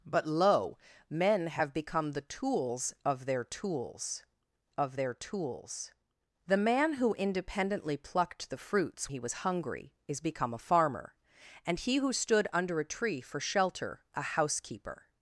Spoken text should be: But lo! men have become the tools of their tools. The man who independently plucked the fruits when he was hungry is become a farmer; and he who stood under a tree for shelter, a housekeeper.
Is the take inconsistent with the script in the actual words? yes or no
yes